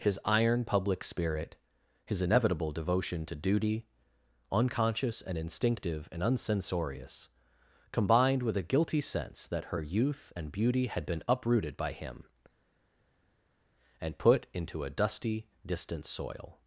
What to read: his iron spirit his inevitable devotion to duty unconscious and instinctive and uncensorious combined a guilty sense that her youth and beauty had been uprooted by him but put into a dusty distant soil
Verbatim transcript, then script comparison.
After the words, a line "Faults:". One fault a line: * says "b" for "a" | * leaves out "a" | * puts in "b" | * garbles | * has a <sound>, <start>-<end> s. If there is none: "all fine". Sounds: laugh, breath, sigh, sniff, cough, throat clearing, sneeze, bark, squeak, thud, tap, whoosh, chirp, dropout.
his iron public spirit his inevitable devotion to duty unconscious and instinctive and uncensorious combined with a guilty sense that her youth and beauty had been uprooted by him and put into a dusty distant soil
Faults:
* puts in "public"
* puts in "with"
* says "and" for "but"